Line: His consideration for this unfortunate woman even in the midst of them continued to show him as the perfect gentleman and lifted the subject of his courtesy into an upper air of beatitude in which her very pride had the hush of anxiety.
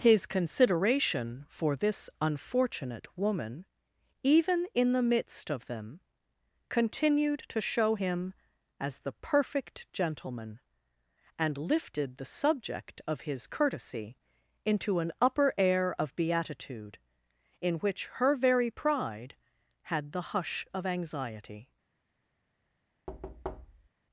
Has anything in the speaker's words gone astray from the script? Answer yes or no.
no